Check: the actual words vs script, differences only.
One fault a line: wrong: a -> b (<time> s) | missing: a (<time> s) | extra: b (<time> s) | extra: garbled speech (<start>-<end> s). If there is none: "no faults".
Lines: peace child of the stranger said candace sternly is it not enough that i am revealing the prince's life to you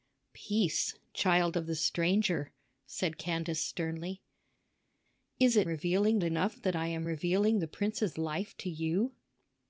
wrong: not -> revealing (5.7 s)